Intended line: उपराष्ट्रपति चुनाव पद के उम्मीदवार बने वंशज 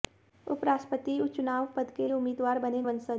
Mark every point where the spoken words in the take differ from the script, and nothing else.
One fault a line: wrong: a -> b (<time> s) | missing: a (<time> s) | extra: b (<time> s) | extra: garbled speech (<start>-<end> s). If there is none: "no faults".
no faults